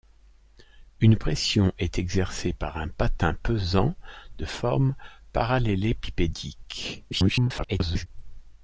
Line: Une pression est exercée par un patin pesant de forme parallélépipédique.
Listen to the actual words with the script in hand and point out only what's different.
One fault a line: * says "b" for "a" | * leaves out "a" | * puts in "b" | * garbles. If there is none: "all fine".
* garbles